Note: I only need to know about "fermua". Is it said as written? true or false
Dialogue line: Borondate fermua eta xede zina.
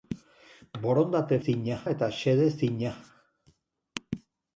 false